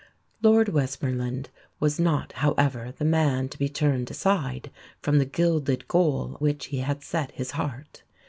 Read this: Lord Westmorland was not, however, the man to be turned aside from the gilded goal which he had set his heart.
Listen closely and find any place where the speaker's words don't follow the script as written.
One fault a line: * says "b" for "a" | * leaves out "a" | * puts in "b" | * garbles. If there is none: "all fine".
all fine